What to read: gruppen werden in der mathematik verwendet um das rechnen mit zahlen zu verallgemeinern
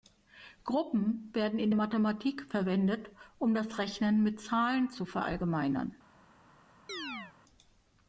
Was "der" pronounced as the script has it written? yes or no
no